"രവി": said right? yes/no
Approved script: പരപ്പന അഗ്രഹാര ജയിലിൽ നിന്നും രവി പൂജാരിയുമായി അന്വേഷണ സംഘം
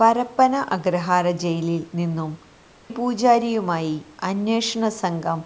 no